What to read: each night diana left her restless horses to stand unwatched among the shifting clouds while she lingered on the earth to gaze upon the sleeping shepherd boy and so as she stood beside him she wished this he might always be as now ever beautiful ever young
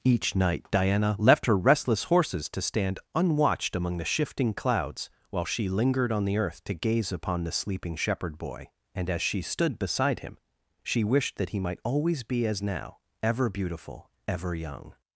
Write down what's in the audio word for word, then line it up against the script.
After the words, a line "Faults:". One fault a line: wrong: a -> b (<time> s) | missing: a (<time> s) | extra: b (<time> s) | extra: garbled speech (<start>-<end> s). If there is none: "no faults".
each night diana left her restless horses to stand unwatched among the shifting clouds while she lingered on the earth to gaze upon the sleeping shepherd boy and as she stood beside him she wished that he might always be as now ever beautiful ever young
Faults:
missing: so (9.1 s)
wrong: this -> that (11.3 s)